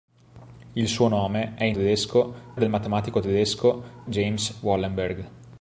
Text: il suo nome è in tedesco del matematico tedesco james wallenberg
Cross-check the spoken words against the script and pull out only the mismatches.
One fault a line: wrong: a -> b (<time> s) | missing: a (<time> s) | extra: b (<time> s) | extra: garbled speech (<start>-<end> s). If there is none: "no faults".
no faults